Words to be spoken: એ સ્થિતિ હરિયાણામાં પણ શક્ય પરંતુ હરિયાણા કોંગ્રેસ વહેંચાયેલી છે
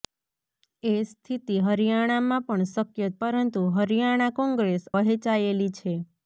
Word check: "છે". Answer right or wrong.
right